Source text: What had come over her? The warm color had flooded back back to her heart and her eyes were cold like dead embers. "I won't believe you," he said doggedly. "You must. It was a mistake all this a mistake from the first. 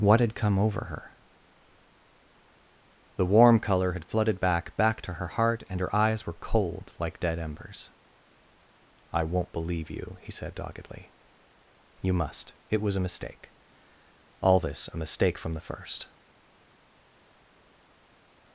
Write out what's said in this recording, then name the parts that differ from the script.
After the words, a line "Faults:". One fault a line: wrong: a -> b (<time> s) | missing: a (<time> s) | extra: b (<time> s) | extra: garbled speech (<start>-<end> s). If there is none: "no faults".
What had come over her? The warm color had flooded back back to her heart and her eyes were cold like dead embers. "I won't believe you," he said doggedly. "You must. It was a mistake all this a mistake from the first.
Faults:
no faults